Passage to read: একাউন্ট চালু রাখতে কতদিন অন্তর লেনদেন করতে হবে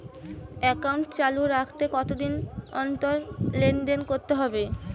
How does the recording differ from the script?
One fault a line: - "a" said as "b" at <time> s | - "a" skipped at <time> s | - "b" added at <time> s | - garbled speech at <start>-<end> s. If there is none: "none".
none